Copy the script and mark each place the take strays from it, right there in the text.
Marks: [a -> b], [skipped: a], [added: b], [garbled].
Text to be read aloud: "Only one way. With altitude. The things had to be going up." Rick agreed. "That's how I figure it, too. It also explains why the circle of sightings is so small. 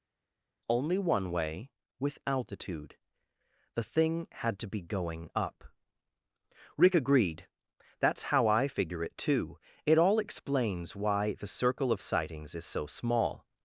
"Only one way. With altitude. The [things -> thing] had to be going up." Rick agreed. "That's how I figure it, too. It [also -> all] explains why the circle of sightings is so small.